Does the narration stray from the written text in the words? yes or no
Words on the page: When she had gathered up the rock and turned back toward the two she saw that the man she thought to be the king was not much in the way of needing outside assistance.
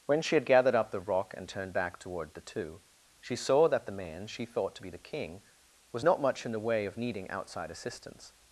no